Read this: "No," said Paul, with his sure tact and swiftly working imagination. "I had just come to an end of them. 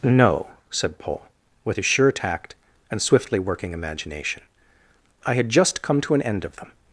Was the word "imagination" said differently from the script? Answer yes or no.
no